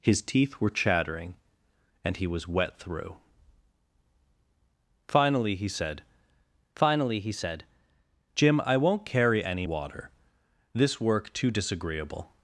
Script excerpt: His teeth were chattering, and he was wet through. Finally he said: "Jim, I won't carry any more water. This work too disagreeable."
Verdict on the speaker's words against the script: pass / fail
fail